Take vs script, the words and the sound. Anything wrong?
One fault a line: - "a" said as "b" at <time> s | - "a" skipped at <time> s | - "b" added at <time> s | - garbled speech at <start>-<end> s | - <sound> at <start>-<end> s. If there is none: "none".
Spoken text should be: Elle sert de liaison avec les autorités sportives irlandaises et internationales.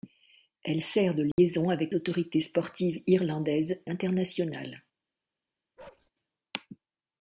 - dropout at 1.3-1.4 s
- "les" skipped at 1.9 s
- "et" skipped at 3.8 s
- bark at 5.8-6.1 s